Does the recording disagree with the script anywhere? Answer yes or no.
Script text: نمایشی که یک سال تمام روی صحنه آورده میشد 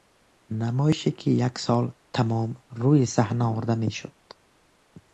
no